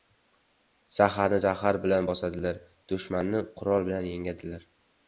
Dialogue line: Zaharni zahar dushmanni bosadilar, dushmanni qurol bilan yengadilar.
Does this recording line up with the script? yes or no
no